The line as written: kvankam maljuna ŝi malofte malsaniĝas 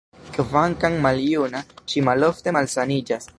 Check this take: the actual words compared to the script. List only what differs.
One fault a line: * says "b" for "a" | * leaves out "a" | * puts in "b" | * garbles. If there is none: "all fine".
all fine